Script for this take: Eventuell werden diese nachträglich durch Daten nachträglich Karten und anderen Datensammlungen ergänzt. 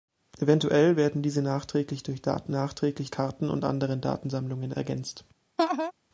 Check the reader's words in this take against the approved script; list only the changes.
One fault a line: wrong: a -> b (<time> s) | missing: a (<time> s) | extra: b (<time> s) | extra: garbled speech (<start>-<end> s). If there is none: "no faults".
no faults